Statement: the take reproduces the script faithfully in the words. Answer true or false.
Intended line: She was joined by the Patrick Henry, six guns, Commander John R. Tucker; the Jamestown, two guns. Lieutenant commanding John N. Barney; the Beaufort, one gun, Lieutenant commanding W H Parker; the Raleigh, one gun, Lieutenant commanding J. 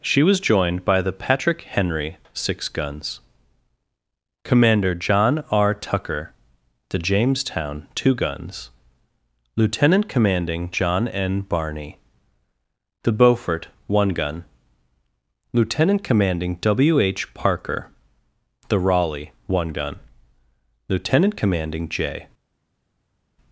true